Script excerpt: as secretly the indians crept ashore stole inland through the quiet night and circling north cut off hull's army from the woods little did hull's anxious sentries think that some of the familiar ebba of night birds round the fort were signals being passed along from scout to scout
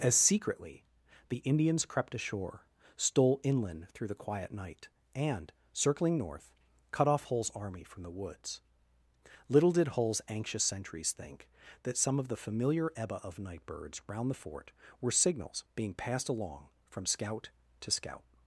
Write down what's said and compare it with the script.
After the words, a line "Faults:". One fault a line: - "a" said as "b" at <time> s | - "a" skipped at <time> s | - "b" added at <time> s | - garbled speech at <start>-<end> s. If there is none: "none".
as secretly the indians crept ashore stole inland through the quiet night and circling north cut off hull's army from the woods little did hull's anxious sentries think that some of the familiar ebba of night birds round the fort were signals being passed along from scout to scout
Faults:
none